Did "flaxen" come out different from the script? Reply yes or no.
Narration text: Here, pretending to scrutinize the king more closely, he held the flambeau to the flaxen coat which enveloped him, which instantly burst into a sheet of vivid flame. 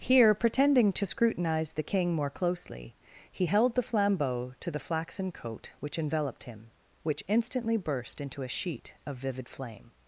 no